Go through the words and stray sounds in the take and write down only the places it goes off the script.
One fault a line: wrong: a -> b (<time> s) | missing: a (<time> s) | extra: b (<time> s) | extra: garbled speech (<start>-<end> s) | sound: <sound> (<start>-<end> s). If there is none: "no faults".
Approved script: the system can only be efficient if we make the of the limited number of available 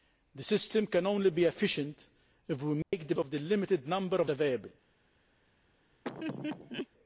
sound: dropout (2.8-2.9 s)
sound: laugh (6.0-6.9 s)